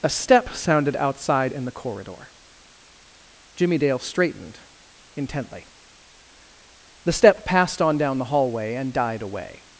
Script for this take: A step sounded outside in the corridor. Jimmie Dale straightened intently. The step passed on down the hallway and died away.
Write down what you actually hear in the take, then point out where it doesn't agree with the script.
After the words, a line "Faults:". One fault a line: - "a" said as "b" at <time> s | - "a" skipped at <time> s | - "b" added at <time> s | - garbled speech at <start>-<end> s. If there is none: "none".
A step sounded outside in the corridor. Jimmie Dale straightened intently. The step passed on down the hallway and died away.
Faults:
none